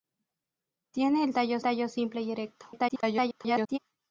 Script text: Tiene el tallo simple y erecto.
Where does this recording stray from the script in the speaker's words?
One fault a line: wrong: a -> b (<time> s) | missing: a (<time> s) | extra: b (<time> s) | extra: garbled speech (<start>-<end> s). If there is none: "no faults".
extra: tallo (1.6 s)
extra: garbled speech (2.7-3.8 s)